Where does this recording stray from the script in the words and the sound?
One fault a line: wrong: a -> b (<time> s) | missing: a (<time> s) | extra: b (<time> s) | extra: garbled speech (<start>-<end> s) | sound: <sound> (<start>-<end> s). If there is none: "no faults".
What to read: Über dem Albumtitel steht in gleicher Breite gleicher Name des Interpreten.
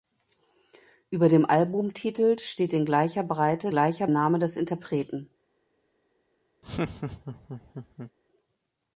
sound: laugh (6.6-8.1 s)